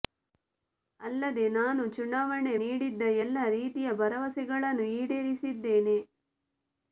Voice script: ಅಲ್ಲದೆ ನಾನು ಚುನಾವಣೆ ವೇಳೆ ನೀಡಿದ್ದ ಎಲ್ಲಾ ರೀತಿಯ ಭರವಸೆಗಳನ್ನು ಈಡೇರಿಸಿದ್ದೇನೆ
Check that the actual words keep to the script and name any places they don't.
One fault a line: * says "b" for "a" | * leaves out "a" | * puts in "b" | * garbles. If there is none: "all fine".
* leaves out "ವೇಳೆ"